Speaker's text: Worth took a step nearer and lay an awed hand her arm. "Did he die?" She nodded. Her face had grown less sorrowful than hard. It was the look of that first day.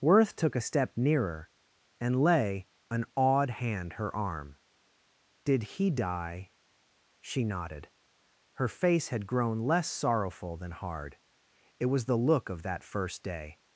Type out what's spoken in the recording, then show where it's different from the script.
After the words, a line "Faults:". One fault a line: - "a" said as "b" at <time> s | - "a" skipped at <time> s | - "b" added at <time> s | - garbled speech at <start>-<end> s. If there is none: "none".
Worth took a step nearer and lay an awed hand her arm. "Did he die?" She nodded. Her face had grown less sorrowful than hard. It was the look of that first day.
Faults:
none